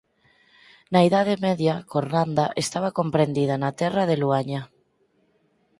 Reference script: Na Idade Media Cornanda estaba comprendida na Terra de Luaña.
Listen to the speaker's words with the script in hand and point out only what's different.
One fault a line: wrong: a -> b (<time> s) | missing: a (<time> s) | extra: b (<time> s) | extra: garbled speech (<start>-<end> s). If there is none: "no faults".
no faults